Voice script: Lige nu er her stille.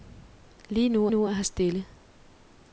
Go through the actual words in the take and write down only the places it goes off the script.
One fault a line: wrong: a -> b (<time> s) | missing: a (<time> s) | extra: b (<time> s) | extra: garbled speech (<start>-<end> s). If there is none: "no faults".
extra: nu (1.1 s)